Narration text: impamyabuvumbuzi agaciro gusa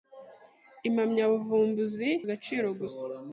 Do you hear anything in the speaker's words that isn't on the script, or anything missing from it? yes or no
no